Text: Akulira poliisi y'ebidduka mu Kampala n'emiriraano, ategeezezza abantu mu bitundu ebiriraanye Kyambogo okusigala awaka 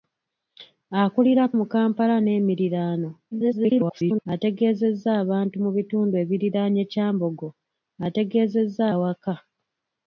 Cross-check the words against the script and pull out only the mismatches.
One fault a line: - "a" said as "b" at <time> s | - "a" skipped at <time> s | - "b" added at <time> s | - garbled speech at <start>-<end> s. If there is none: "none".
- "poliisi y'ebidduka" skipped at 1.4 s
- garbled speech at 3.3-4.3 s
- "okusigala" said as "ategeezezza" at 8.1 s